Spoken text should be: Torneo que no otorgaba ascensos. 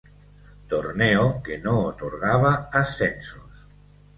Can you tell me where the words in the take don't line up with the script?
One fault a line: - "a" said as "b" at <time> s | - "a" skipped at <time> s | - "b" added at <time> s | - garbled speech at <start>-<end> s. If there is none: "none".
none